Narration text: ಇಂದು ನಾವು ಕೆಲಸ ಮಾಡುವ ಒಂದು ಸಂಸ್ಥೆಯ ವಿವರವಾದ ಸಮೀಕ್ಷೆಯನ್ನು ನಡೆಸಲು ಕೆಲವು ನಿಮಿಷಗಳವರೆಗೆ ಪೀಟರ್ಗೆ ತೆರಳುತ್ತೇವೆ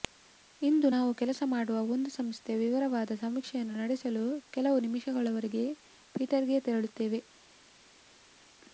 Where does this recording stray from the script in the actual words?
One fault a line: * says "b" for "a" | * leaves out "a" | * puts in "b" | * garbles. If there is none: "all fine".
all fine